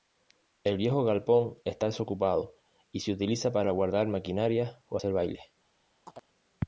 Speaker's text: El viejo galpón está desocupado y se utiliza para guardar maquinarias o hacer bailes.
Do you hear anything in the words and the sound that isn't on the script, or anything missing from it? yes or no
yes